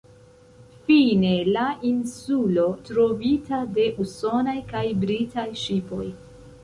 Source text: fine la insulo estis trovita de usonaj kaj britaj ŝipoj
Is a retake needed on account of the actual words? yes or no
yes